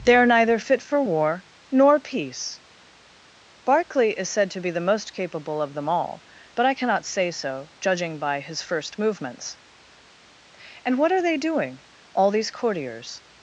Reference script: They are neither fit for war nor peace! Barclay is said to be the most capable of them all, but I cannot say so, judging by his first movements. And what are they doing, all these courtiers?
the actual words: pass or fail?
pass